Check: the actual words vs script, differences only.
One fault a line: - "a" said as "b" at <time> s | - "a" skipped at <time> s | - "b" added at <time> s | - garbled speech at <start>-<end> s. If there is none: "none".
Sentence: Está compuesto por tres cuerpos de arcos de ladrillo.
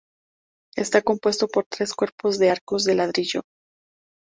none